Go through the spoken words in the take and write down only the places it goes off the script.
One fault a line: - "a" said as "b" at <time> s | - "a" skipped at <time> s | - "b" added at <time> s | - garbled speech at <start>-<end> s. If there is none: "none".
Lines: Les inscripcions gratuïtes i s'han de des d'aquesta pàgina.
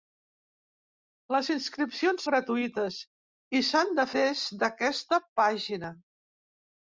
none